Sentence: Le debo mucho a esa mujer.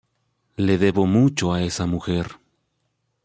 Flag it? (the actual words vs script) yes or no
no